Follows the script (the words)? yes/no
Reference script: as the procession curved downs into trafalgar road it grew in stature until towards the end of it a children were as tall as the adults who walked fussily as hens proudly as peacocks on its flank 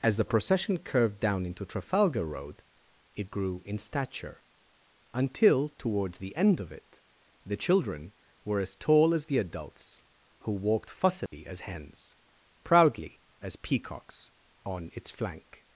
no